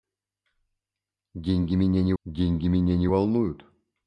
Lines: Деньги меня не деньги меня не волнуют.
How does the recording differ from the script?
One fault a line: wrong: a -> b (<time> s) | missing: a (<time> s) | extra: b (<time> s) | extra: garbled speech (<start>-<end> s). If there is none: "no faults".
no faults